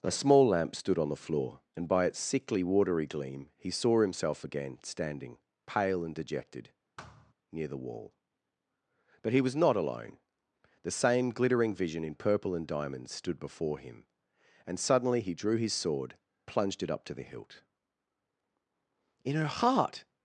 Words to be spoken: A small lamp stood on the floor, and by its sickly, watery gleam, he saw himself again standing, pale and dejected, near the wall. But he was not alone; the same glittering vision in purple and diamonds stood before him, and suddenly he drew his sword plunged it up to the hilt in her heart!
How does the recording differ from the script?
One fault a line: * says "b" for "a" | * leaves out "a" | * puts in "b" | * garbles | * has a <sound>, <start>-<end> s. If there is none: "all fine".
* has a thud, 7.0-7.3 s